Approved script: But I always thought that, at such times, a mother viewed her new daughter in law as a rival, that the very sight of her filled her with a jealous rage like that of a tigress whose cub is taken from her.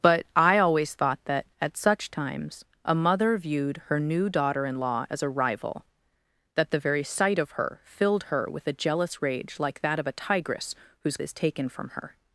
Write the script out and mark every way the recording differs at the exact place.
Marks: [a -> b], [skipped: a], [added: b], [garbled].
But I always thought that, at such times, a mother viewed her new daughter in law as a rival, that the very sight of her filled her with a jealous rage like that of a tigress whose [skipped: cub] is taken from her.